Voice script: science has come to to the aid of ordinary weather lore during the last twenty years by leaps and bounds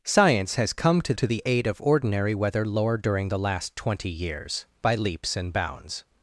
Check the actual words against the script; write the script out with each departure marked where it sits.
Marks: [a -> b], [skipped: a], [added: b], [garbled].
science has come to to the aid of ordinary weather lore during the last twenty years by leaps and bounds